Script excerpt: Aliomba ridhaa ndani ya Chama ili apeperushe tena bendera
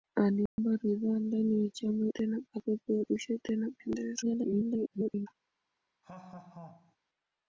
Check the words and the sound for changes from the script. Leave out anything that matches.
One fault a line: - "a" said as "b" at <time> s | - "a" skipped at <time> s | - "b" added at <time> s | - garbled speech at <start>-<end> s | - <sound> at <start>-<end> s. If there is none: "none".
- dropout at 0.5-0.6 s
- "ili" said as "tena" at 2.1 s
- garbled speech at 4.2-5.3 s
- laugh at 6.0-7.0 s